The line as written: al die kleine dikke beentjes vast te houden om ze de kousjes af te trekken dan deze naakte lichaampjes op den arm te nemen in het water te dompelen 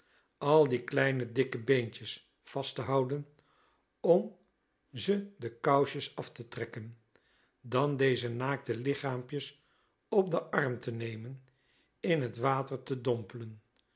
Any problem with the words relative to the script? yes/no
no